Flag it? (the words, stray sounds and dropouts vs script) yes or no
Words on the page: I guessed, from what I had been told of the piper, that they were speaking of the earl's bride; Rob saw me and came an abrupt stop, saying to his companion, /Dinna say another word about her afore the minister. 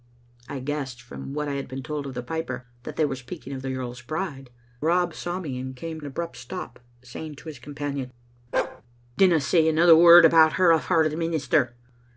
yes